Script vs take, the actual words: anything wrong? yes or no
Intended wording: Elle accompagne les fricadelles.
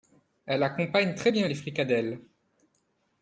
yes